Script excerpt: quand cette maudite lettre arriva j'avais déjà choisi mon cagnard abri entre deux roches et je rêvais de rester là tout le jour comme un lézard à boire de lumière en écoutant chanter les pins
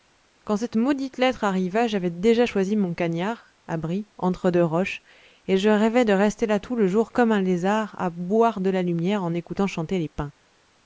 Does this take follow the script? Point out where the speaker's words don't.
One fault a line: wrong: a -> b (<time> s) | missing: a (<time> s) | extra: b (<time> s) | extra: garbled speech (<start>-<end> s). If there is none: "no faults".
extra: la (8.7 s)